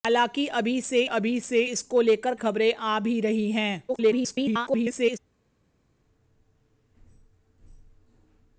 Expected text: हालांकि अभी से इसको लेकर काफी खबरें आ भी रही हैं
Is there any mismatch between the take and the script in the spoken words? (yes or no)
yes